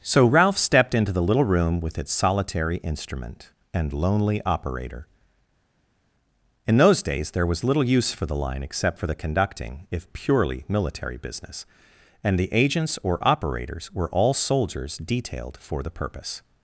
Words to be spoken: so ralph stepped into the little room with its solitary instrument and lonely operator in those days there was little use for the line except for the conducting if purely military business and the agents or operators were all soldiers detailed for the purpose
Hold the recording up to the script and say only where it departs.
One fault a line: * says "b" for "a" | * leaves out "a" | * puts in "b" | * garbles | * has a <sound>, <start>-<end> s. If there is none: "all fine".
all fine